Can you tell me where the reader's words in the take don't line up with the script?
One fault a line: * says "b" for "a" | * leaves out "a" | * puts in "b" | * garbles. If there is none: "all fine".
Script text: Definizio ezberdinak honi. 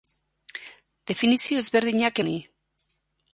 all fine